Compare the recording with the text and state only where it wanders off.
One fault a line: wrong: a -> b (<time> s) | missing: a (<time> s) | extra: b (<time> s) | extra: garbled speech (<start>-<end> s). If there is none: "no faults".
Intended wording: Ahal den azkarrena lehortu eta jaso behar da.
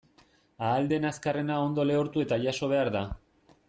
extra: ondo (1.7 s)